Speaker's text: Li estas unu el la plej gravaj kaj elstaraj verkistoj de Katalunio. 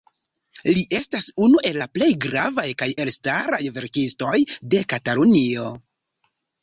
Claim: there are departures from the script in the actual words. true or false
false